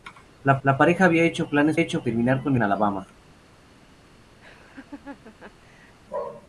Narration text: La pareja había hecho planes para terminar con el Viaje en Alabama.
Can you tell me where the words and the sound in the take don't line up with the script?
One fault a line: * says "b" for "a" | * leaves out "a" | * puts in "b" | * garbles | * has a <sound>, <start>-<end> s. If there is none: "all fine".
* puts in "la"
* says "hecho" for "para"
* leaves out "el Viaje"
* has a laugh, 4.4-6.0 s